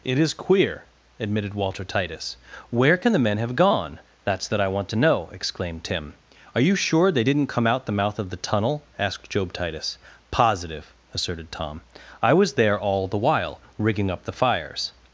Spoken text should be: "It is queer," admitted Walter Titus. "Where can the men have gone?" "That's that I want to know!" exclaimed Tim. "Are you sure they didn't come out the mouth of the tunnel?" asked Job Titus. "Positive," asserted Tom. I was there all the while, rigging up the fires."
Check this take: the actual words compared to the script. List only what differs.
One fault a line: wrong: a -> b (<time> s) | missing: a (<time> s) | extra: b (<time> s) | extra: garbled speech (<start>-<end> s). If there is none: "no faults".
no faults